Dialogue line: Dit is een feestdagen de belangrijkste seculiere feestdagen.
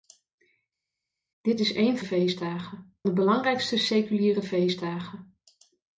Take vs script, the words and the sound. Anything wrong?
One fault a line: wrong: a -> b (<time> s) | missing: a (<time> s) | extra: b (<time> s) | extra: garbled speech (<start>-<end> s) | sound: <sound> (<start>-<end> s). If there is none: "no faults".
no faults